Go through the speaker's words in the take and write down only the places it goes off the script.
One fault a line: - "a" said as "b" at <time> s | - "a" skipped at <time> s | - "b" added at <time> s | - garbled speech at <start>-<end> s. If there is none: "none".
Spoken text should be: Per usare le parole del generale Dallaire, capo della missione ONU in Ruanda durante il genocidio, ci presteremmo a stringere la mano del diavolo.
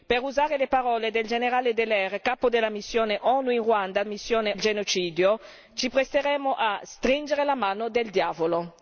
- "durante" said as "missione" at 4.1 s